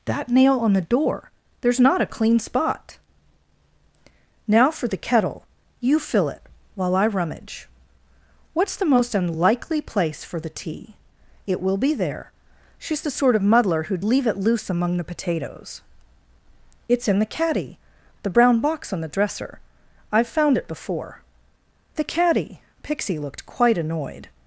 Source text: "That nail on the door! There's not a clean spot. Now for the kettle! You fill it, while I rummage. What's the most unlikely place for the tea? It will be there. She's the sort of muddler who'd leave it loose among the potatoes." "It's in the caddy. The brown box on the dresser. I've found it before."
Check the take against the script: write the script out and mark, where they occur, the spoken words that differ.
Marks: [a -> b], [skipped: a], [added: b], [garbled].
"That nail on the door! There's not a clean spot. Now for the kettle! You fill it, while I rummage. What's the most unlikely place for the tea? It will be there. She's the sort of muddler who'd leave it loose among the potatoes." "It's in the caddy. The brown box on the dresser. I've found it before." [added: The caddy Pixie looked quite annoyed]